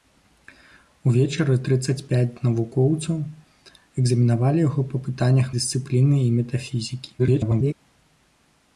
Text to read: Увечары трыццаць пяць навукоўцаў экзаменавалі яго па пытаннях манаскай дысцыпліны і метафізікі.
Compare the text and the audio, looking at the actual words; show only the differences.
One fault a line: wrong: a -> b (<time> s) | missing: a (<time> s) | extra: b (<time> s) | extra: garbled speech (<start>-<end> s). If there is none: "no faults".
missing: манаскай (5.5 s)
extra: garbled speech (7.2-7.7 s)